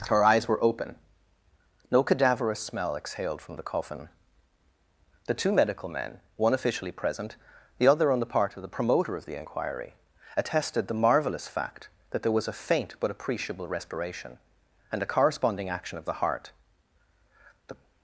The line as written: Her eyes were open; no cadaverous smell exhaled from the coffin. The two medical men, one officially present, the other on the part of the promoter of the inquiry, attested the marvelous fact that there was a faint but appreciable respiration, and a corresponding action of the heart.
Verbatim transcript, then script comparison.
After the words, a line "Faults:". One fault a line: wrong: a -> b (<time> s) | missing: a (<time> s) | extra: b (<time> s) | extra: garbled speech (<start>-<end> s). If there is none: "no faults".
Her eyes were open; no cadaverous smell exhaled from the coffin. The two medical men, one officially present, the other on the part of the promoter of the inquiry, attested the marvelous fact that there was a faint but appreciable respiration, and a corresponding action of the heart. The
Faults:
extra: The (17.7 s)